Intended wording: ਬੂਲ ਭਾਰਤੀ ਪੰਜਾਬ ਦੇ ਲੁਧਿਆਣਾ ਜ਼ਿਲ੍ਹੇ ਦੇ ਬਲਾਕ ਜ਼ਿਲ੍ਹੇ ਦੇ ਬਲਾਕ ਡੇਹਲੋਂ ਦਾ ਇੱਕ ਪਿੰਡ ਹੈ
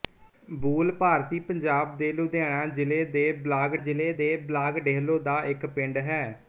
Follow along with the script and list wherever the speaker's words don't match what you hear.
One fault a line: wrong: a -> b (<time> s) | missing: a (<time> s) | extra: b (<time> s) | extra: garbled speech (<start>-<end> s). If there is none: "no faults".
no faults